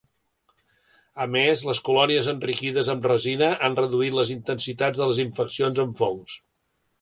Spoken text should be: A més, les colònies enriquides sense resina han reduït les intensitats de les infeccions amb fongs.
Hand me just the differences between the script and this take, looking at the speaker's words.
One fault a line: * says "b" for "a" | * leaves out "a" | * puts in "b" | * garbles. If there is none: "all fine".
* says "amb" for "sense"